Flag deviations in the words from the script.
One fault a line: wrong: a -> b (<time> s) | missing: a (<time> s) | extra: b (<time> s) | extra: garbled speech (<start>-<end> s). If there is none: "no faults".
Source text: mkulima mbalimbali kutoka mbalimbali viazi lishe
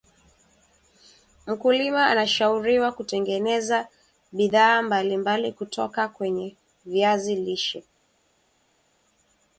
extra: anashauriwa kutengeneza bidhaa (2.1 s)
wrong: mbalimbali -> kwenye (6.1 s)